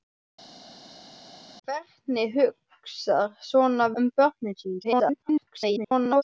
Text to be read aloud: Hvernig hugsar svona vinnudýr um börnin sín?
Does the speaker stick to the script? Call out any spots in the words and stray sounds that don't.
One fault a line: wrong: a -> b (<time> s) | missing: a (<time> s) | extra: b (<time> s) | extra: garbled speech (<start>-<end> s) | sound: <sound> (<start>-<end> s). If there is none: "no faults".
missing: vinnudýr (3.9 s)
extra: garbled speech (4.8-6.2 s)